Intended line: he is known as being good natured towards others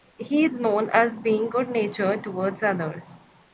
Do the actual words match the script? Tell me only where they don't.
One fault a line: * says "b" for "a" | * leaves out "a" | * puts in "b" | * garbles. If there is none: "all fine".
all fine